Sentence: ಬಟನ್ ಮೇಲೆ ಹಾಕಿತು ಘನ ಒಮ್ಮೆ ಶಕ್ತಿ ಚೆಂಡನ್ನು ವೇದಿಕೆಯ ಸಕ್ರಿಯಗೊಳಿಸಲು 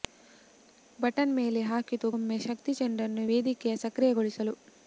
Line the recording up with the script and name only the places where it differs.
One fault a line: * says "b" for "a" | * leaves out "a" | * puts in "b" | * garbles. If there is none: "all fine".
* leaves out "ಘನ"